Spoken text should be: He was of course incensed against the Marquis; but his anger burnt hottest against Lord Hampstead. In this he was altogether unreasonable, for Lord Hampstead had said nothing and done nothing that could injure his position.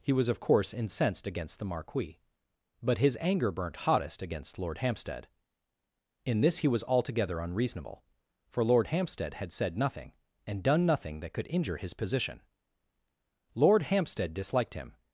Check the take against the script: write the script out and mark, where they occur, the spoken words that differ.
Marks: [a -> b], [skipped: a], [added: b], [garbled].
He was of course incensed against the Marquis; but his anger burnt hottest against Lord Hampstead. In this he was altogether unreasonable, for Lord Hampstead had said nothing and done nothing that could injure his position. [added: Lord Hampstead disliked him]